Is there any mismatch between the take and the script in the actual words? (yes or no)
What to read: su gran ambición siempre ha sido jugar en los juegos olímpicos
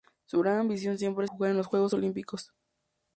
yes